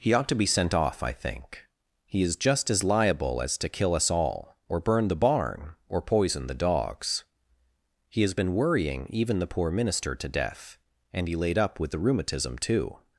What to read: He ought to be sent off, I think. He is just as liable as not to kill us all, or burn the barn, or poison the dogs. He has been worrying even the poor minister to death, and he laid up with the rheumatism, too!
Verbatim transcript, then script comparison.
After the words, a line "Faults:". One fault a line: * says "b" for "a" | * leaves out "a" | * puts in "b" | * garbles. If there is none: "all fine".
He ought to be sent off, I think. He is just as liable as to kill us all, or burn the barn, or poison the dogs. He has been worrying even the poor minister to death, and he laid up with the rheumatism, too!
Faults:
* leaves out "not"